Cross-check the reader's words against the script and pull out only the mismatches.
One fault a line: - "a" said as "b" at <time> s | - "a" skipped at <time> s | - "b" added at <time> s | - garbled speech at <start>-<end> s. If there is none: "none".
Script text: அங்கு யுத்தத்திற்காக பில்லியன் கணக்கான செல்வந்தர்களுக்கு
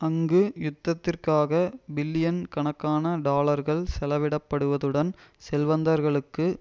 - "டாலர்கள் செலவிடப்படுவதுடன்" added at 3.3 s